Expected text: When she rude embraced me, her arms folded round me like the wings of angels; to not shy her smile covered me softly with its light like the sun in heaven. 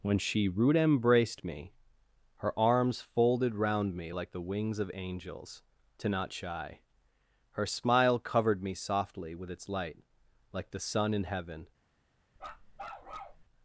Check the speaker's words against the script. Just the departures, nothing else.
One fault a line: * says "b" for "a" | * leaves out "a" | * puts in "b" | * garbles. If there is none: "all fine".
all fine